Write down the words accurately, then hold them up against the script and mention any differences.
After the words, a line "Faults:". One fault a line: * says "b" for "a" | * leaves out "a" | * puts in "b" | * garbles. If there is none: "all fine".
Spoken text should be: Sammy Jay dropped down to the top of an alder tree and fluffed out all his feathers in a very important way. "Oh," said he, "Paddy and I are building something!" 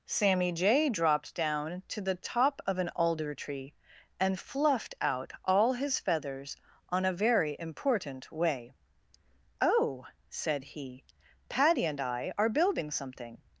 Sammy Jay dropped down to the top of an alder tree and fluffed out all his feathers on a very important way. "Oh," said he, "Paddy and I are building something!"
Faults:
* says "on" for "in"